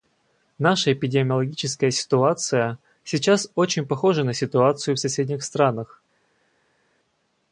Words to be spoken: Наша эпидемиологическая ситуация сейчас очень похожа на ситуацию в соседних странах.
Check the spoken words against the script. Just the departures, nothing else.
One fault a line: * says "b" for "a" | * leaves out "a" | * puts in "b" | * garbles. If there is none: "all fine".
all fine